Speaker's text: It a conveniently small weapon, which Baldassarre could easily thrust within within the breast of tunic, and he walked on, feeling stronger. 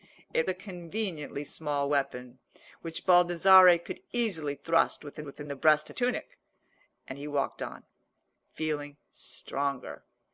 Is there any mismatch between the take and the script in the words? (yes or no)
no